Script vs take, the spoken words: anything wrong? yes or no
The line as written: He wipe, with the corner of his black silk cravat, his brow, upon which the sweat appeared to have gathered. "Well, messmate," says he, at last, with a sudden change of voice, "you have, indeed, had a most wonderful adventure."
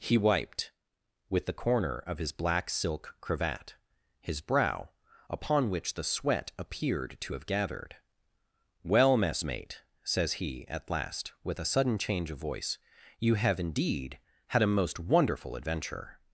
yes